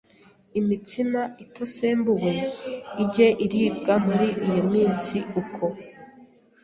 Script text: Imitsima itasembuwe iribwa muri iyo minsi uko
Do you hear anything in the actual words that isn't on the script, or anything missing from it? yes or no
yes